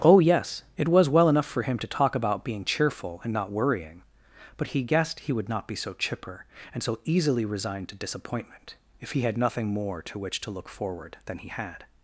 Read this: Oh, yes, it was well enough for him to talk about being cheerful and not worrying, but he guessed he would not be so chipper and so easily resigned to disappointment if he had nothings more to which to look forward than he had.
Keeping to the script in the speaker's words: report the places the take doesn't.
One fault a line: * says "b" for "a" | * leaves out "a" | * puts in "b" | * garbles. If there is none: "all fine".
* says "nothing" for "nothings"